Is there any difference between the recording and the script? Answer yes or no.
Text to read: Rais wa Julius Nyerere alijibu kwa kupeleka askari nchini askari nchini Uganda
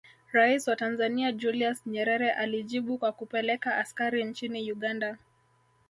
yes